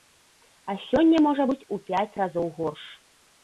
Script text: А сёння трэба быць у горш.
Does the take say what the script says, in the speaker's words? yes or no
no